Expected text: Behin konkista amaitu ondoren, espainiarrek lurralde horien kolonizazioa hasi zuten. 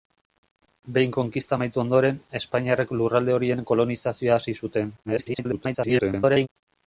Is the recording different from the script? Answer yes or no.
yes